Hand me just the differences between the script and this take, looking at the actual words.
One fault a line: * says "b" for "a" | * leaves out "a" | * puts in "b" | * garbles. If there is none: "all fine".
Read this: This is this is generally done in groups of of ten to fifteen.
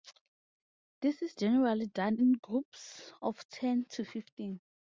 * leaves out "this is"
* leaves out "of"